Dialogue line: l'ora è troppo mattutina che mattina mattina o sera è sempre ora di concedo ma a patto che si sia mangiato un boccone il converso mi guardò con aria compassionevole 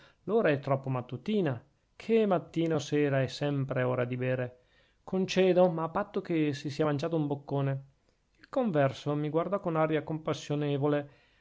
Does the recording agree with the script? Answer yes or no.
no